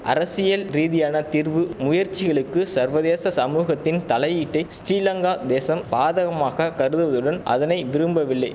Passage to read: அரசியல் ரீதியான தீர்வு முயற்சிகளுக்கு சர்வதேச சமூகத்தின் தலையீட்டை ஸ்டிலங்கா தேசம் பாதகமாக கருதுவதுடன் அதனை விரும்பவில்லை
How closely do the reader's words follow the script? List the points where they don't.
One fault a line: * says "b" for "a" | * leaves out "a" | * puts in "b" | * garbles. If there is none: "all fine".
all fine